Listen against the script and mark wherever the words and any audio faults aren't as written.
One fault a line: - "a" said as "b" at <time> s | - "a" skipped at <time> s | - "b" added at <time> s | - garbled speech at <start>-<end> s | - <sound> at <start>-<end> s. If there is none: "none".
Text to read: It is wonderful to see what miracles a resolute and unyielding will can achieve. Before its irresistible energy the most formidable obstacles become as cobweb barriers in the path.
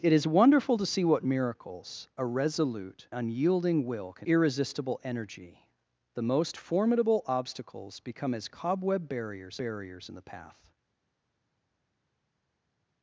- "and" skipped at 3.1 s
- "achieve Before its" skipped at 4.3 s
- "barriers" added at 9.6 s